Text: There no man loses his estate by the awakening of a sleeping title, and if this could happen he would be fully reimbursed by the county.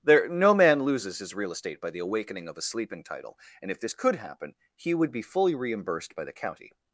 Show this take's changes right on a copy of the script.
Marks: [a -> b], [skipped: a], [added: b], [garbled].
There no man loses his [added: real] estate by the awakening of a sleeping title, and if this could happen he would be fully reimbursed by the county.